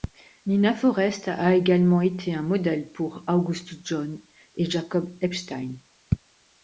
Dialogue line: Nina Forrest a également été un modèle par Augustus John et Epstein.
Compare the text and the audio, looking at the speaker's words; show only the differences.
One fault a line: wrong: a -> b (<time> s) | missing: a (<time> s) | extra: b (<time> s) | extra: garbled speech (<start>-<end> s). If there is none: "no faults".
wrong: par -> pour (2.9 s)
extra: Jacob (4.7 s)